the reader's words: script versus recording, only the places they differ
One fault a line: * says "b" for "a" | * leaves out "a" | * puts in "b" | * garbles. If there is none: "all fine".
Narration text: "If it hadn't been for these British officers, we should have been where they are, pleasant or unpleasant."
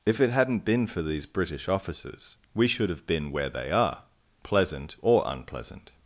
all fine